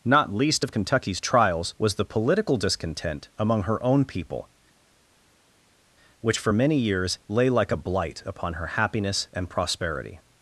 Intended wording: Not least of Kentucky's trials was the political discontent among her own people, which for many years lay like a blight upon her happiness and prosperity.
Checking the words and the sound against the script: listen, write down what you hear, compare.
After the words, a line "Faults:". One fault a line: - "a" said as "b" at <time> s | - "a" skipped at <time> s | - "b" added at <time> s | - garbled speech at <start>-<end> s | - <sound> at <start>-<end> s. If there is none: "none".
Not least of Kentucky's trials was the political discontent among her own people, which for many years lay like a blight upon her happiness and prosperity.
Faults:
none